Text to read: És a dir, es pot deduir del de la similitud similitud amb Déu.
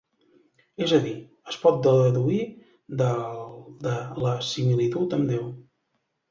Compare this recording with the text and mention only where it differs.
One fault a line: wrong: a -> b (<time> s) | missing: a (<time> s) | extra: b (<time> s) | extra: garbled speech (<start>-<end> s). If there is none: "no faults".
missing: similitud (5.2 s)